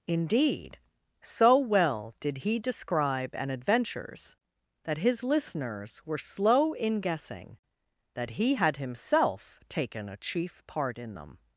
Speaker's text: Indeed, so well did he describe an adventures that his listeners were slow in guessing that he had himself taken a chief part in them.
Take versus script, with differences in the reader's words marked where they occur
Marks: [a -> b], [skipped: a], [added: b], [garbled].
Indeed, so well did he describe an adventures that his listeners were slow in guessing that he had himself taken a chief part in them.